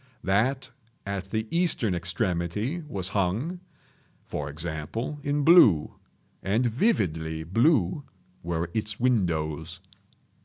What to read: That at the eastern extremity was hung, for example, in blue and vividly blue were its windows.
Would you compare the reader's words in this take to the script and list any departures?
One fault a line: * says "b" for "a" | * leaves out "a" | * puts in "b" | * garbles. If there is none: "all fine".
all fine